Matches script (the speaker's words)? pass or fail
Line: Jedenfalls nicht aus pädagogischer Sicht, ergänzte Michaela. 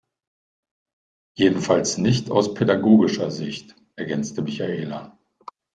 pass